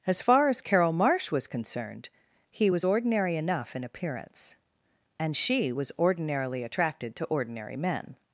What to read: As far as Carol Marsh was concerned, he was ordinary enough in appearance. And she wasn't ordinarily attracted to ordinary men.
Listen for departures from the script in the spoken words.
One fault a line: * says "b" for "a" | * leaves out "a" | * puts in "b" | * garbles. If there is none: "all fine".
* says "was" for "wasn't"